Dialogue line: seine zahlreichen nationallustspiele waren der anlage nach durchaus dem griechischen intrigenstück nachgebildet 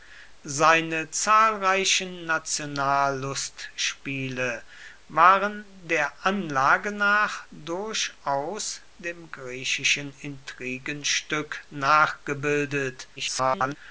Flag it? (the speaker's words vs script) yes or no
yes